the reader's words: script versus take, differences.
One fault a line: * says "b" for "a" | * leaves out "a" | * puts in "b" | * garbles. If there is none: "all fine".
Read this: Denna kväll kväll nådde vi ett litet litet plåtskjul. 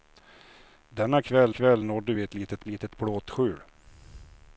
all fine